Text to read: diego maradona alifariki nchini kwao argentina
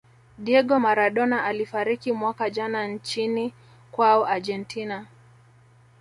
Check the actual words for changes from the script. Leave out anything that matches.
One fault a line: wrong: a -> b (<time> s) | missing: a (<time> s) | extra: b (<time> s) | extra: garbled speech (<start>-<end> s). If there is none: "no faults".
extra: mwaka jana (2.1 s)